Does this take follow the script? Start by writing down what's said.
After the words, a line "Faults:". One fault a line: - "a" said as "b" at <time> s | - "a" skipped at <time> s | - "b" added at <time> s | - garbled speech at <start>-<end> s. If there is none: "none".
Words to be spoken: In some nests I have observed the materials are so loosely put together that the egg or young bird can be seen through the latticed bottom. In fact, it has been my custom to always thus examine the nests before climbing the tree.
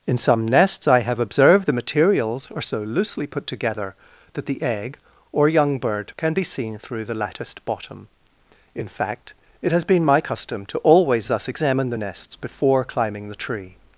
In some nests I have observed the materials are so loosely put together that the egg or young bird can be seen through the latticed bottom. In fact, it has been my custom to always thus examine the nests before climbing the tree.
Faults:
none